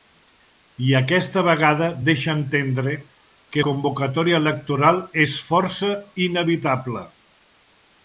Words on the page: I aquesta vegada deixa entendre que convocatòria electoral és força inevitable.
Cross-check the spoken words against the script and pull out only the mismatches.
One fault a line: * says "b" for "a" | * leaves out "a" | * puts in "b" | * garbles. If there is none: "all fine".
all fine